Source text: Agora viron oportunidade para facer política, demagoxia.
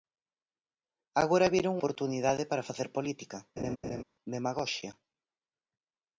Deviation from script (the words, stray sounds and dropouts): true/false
true